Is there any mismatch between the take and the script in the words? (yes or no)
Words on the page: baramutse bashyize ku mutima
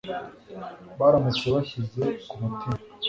no